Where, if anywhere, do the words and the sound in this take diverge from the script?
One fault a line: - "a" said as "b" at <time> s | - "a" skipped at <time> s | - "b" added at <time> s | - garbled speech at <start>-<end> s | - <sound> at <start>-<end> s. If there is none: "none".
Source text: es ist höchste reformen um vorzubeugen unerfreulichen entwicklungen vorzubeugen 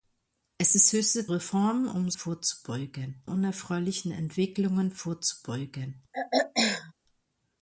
- throat clearing at 6.1-6.9 s